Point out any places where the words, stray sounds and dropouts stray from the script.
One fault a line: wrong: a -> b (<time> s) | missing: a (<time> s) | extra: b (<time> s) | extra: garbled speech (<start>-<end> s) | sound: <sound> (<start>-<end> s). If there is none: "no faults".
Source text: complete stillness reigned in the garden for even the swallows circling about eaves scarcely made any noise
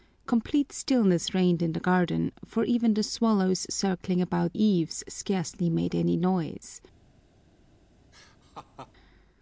sound: laugh (8.1-8.9 s)